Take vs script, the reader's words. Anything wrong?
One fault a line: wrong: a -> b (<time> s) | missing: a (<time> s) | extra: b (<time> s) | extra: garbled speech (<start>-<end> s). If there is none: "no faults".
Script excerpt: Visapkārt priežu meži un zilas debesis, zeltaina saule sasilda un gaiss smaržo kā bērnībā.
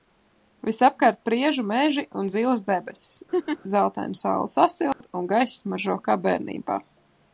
no faults